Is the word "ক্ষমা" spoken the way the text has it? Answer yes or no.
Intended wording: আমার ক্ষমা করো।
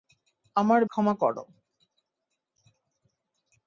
yes